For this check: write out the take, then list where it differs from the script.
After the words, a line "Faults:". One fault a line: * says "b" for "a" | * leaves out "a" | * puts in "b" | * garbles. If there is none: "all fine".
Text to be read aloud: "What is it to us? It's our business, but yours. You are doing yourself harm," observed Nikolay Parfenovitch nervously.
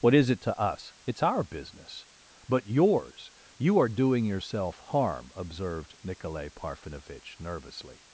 "What is it to us? It's our business, but yours. You are doing yourself harm," observed Nikolay Parfenovitch nervously.
Faults:
all fine